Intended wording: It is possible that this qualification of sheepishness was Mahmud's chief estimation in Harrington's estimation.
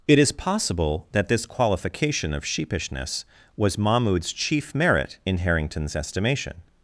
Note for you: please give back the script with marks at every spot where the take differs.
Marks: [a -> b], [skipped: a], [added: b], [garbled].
It is possible that this qualification of sheepishness was Mahmud's chief [estimation -> merit] in Harrington's estimation.